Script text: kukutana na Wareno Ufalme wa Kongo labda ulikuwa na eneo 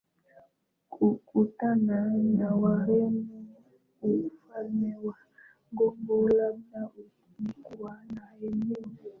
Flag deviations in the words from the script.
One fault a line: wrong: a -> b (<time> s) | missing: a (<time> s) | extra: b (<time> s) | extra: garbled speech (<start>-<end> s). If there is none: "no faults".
no faults